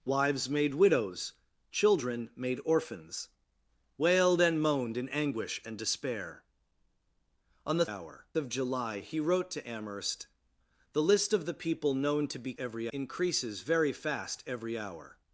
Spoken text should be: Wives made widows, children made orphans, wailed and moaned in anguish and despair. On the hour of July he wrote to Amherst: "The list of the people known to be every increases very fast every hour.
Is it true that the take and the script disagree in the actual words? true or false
false